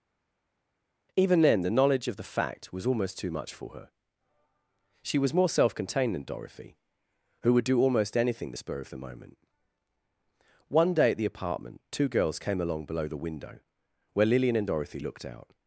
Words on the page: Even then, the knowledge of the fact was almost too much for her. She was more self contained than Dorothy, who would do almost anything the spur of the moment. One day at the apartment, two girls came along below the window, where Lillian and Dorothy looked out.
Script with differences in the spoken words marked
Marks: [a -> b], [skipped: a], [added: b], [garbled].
Even then, the knowledge of the fact was almost too much for her. She was more self contained than Dorothy, who would do almost anything the spur of the moment. One day at the apartment, two girls came along below the window, where Lillian and Dorothy looked out.